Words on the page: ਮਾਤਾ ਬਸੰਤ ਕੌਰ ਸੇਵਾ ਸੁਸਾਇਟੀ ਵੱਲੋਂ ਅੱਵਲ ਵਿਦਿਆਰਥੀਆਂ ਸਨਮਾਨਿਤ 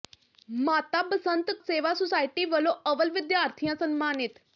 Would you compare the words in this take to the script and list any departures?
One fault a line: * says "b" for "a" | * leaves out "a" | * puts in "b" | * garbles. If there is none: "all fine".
* leaves out "ਕੌਰ"